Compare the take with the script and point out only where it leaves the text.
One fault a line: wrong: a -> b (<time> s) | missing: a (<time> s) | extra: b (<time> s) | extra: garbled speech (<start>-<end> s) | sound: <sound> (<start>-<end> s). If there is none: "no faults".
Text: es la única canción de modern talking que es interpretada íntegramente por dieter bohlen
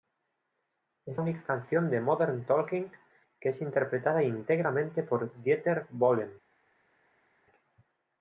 missing: la (1.2 s)